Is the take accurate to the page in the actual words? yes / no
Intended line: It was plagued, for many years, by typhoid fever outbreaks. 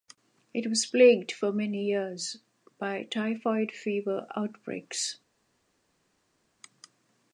yes